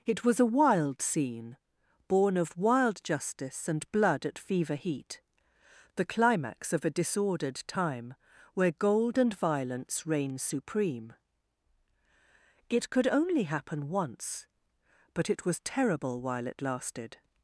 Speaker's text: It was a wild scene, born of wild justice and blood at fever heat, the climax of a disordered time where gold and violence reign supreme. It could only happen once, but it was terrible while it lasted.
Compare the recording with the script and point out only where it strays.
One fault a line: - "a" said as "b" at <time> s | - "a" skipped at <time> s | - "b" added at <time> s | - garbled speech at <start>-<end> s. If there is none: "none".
none